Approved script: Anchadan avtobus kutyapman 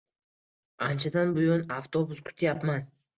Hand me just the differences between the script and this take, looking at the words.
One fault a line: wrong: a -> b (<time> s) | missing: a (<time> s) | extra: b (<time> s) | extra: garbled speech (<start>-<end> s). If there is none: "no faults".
extra: buyon (1.4 s)